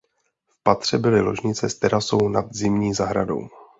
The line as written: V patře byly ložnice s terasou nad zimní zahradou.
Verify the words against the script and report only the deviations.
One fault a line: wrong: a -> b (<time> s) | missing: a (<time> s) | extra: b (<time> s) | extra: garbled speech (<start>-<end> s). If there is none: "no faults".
no faults